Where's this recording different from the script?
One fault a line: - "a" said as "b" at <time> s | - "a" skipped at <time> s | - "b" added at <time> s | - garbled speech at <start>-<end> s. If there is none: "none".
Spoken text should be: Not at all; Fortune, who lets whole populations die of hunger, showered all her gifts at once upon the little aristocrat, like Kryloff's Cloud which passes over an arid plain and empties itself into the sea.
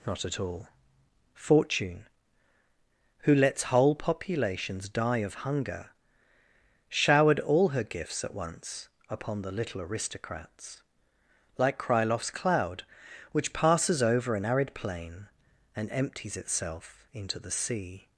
- "aristocrat" said as "aristocrats" at 9.8 s